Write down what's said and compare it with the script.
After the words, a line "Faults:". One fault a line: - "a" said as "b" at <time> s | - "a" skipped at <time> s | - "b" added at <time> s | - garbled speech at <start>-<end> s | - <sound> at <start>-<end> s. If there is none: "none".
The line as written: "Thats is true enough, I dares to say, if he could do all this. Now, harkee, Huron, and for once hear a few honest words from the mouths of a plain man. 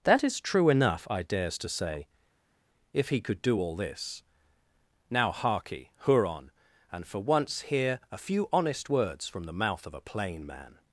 "That is true enough, I dares to say, if he could do all this. Now, harkee, Huron, and for once hear a few honest words from the mouth of a plain man.
Faults:
- "Thats" said as "That" at 0.0 s
- "mouths" said as "mouth" at 9.6 s